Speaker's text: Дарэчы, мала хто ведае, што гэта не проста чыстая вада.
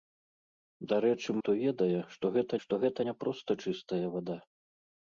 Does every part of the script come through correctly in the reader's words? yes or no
no